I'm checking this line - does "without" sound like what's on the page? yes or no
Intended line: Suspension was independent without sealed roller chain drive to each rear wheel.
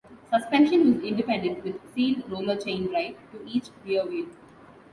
no